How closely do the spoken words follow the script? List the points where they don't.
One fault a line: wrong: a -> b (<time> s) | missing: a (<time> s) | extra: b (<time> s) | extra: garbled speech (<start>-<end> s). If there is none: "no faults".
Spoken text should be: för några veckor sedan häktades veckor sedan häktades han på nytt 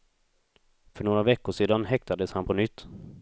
missing: veckor sedan häktades (2.3 s)